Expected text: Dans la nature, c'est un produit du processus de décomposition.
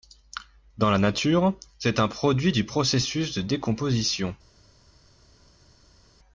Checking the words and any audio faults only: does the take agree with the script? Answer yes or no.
yes